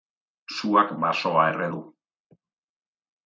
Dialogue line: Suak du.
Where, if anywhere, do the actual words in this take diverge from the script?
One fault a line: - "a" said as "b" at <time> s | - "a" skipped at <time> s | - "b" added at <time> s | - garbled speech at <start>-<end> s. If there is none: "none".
- "basoa erre" added at 1.0 s